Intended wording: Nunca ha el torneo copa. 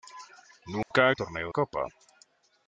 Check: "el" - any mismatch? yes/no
no